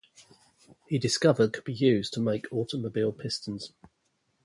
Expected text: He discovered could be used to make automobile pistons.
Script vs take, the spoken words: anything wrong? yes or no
no